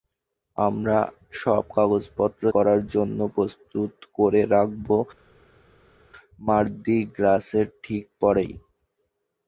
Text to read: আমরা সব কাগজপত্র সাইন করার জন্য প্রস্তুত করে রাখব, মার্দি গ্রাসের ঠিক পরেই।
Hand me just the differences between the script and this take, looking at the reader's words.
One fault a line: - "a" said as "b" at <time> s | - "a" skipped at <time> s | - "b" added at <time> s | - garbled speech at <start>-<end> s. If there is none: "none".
- "সাইন" skipped at 2.4 s